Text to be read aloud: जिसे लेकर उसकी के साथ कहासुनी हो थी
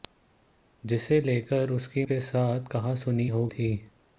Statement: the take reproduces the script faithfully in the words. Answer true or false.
true